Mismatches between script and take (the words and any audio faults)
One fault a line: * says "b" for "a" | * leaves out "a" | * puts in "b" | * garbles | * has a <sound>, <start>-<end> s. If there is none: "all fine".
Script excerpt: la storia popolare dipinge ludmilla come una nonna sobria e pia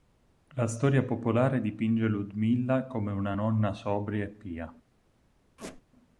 * has a squeak, 5.6-5.8 s